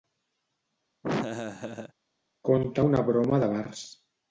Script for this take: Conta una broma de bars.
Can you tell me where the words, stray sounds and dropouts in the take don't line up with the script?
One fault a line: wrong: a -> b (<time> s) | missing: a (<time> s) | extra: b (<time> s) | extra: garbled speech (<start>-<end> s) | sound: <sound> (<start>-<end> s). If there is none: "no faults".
sound: laugh (1.0-1.9 s)